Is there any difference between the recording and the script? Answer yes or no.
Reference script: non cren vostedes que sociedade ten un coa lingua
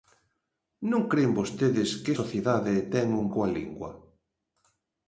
no